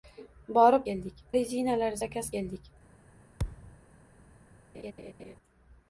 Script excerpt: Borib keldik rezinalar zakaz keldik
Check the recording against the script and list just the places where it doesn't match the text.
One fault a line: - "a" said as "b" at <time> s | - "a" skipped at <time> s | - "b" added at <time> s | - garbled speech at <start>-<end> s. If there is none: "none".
none